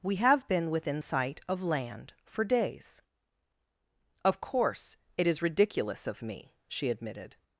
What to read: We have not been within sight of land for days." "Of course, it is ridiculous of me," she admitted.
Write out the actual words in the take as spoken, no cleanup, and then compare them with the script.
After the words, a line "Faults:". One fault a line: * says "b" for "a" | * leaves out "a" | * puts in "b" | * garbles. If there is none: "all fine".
We have been within sight of land for days." "Of course, it is ridiculous of me," she admitted.
Faults:
* leaves out "not"